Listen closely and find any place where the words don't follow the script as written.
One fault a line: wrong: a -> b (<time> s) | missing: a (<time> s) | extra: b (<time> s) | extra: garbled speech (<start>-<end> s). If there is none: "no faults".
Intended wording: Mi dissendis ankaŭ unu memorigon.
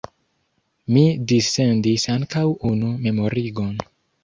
no faults